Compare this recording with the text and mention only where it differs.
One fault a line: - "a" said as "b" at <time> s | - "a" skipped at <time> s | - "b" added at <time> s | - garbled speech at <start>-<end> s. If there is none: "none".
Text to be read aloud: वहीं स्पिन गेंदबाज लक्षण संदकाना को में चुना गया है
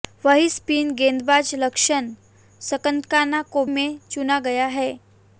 none